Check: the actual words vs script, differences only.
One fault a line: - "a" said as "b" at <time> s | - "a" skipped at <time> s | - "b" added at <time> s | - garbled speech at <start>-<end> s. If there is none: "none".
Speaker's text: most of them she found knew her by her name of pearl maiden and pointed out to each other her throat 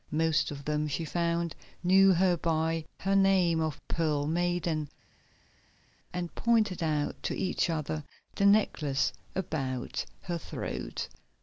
- "the necklace about" added at 8.4 s